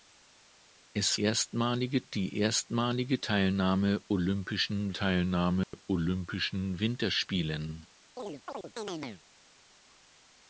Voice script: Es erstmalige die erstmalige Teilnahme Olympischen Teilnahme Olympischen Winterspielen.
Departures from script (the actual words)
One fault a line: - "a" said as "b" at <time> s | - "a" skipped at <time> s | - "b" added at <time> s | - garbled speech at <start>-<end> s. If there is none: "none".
none